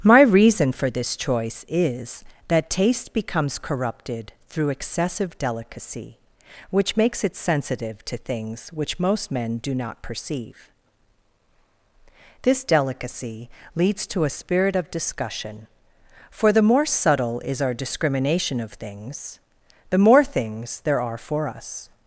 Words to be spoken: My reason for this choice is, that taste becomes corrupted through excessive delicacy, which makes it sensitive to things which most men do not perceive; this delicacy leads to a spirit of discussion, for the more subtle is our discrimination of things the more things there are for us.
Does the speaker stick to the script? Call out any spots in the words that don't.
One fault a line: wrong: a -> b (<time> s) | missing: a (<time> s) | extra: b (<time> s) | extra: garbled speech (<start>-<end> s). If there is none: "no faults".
no faults